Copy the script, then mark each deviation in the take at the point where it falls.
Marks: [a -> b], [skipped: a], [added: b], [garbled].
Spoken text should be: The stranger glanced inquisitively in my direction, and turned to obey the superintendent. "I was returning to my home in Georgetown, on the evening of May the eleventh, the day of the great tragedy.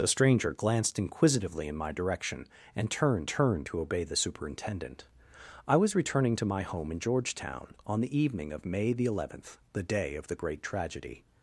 The stranger glanced inquisitively in my direction, and turned [added: turned] to obey the superintendent. "I was returning to my home in Georgetown, on the evening of May the eleventh, the day of the great tragedy.